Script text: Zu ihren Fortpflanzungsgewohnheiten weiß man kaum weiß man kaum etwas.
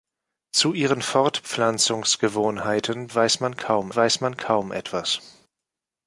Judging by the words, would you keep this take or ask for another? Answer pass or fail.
pass